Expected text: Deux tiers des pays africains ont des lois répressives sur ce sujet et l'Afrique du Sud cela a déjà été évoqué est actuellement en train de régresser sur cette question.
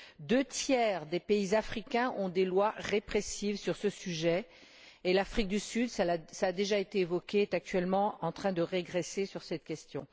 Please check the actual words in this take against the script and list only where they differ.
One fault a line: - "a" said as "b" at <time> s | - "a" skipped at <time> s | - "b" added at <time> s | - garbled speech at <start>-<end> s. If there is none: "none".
none